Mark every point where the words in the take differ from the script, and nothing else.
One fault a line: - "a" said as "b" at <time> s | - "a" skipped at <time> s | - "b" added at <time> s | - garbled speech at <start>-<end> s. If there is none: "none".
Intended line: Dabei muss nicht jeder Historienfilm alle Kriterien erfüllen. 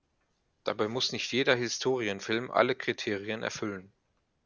none